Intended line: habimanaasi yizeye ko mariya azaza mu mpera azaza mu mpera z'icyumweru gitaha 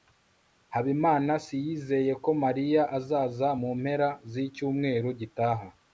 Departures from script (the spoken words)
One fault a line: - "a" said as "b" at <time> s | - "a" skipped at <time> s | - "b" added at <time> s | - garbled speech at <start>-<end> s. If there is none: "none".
- "azaza mu mpera" skipped at 4.1 s